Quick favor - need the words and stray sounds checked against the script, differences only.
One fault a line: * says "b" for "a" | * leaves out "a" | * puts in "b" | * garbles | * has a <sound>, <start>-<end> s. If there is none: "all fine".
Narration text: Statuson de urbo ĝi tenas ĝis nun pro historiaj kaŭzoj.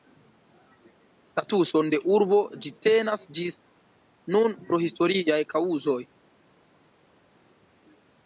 all fine